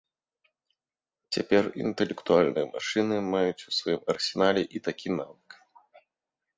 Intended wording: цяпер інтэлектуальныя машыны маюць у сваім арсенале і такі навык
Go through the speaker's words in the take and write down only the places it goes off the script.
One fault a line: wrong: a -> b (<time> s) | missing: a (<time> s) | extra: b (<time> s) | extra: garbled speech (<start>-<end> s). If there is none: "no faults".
no faults